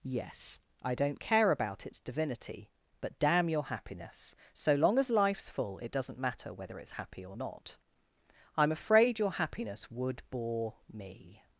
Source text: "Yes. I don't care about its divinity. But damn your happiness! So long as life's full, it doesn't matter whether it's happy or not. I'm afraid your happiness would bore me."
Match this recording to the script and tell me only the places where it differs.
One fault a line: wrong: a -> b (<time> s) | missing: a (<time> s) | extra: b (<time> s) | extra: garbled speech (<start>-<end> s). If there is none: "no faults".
no faults